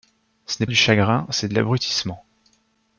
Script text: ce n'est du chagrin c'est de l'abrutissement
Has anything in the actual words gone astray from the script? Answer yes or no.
no